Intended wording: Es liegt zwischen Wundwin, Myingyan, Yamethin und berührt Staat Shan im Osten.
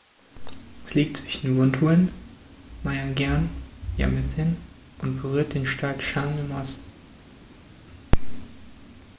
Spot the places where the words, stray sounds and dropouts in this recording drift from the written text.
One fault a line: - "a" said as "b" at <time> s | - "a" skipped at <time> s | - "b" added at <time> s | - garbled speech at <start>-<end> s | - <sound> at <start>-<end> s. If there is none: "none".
- "den" added at 5.5 s